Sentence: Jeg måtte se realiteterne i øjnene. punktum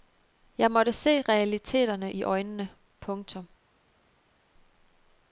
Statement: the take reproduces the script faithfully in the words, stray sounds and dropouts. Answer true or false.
true